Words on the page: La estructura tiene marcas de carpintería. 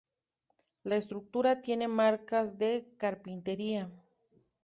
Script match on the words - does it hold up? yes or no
yes